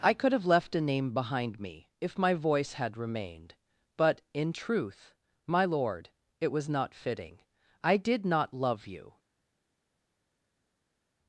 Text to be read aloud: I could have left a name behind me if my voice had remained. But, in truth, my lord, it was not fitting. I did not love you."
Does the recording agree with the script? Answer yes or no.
yes